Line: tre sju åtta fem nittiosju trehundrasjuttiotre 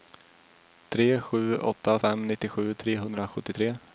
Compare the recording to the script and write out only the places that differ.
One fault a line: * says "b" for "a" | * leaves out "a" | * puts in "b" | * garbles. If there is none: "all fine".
all fine